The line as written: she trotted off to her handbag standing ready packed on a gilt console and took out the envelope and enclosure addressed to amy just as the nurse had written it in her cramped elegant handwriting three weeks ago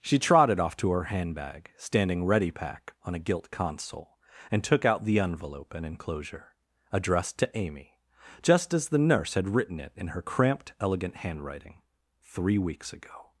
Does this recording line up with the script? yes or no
no